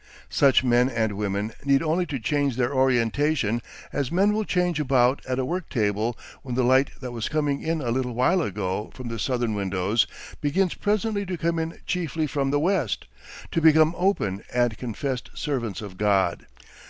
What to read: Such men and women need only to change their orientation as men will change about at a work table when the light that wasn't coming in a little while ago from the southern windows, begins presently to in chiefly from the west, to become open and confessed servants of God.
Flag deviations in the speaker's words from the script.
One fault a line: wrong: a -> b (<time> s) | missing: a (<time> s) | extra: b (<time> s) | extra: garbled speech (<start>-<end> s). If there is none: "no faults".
wrong: wasn't -> was (7.1 s)
extra: come (11.4 s)